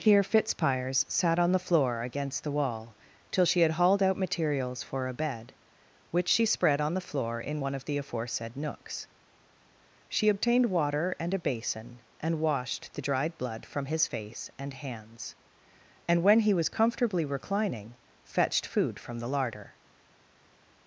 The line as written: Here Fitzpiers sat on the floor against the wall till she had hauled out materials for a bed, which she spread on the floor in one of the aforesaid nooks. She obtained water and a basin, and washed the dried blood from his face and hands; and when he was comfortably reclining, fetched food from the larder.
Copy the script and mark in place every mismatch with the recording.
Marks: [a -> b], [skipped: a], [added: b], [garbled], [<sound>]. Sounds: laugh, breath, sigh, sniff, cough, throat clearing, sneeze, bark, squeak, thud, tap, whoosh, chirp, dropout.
Here Fitzpiers sat on the floor against the wall till she had hauled out materials for a bed, which she spread on the floor in one of the aforesaid nooks. She obtained water and a basin, and washed the dried blood from his face and hands; and when he was comfortably reclining, fetched food from the larder.